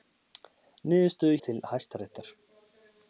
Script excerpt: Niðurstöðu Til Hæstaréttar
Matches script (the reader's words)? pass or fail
pass